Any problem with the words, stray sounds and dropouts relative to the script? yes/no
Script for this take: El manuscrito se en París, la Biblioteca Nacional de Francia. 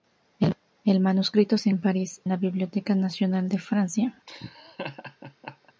yes